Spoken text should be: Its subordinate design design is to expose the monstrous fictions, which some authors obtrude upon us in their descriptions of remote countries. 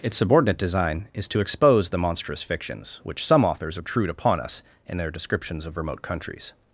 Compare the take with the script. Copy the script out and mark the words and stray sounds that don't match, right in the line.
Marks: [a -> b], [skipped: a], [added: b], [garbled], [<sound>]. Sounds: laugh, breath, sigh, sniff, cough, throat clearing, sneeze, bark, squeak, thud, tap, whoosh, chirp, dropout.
Its subordinate design [skipped: design] is to expose the monstrous fictions, which some authors obtrude upon us in their descriptions of remote countries.